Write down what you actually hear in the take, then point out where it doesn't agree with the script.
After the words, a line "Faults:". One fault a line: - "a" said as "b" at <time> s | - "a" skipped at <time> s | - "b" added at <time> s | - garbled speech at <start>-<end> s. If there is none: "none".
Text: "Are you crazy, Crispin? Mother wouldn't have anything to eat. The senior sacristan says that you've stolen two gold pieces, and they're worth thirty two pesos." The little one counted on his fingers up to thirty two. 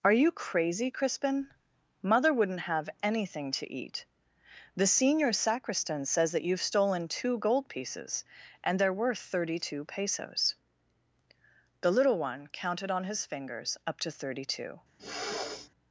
"Are you crazy, Crispin? Mother wouldn't have anything to eat. The senior sacristan says that you've stolen two gold pieces, and they're worth thirty two pesos." The little one counted on his fingers up to thirty two.
Faults:
none